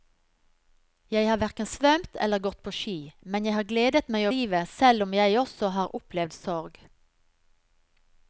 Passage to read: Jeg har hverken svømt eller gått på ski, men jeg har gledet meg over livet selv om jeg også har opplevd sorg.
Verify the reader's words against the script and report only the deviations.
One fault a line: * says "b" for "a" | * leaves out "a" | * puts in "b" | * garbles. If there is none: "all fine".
* leaves out "over"